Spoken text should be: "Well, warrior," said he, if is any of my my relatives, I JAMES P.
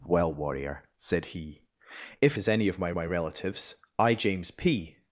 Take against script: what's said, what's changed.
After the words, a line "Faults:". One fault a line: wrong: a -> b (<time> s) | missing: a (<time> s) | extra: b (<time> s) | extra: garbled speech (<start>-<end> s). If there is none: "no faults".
"Well, warrior," said he, if is any of my my relatives, I JAMES P.
Faults:
no faults